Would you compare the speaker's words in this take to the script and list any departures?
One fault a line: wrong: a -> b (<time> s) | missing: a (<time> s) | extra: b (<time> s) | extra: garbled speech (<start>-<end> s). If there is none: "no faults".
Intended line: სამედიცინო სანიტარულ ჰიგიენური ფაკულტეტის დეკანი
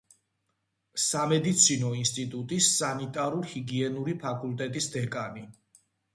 extra: ინსტიტუტის (2.0 s)